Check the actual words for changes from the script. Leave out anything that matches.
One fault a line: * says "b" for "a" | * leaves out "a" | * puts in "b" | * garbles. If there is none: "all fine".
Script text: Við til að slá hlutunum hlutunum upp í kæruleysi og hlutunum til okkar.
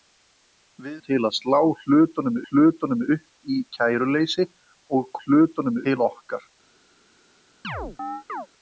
all fine